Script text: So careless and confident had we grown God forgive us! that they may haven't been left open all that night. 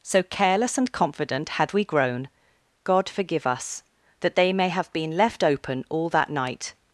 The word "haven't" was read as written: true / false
false